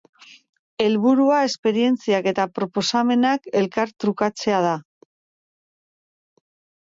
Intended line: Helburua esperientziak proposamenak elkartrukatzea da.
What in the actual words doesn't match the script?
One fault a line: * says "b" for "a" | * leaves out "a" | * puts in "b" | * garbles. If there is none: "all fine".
* puts in "eta"